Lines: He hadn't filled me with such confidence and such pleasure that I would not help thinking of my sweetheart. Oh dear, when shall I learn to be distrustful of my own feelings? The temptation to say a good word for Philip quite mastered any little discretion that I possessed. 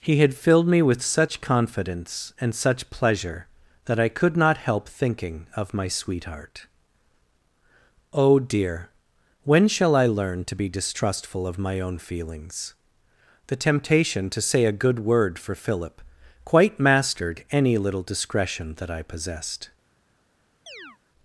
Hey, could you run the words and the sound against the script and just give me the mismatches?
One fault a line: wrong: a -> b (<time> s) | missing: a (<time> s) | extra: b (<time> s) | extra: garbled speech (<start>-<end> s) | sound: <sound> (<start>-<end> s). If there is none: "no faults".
wrong: hadn't -> had (0.2 s)
wrong: would -> could (4.1 s)
sound: chirp (20.7-21.0 s)